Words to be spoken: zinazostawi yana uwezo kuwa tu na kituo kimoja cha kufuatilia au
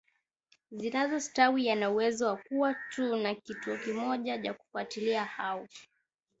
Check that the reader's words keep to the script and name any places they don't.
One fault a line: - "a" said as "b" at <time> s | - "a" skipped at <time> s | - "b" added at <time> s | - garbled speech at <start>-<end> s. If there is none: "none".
- "wa" added at 2.3 s